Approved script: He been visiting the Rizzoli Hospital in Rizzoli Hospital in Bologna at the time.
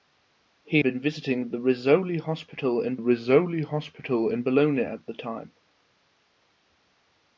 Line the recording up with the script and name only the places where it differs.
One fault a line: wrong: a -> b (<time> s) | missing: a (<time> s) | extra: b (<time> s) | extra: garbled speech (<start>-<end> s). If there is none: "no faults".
no faults